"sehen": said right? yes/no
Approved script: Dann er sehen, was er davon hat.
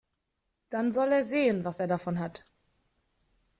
yes